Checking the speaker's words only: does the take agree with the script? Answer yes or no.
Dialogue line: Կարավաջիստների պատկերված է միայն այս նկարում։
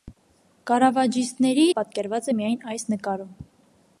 yes